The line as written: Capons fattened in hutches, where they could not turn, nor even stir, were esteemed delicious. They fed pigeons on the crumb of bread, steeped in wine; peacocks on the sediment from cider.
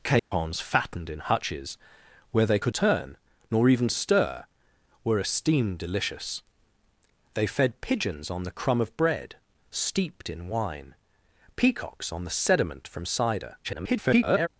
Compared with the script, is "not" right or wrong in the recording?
wrong